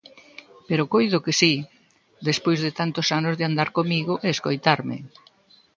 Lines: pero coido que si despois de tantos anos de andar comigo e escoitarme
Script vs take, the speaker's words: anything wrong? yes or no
no